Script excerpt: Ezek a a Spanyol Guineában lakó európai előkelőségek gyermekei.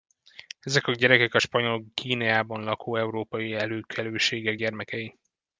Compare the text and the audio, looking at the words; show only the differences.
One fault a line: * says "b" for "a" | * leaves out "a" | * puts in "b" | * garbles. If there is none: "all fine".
* puts in "gyerekek"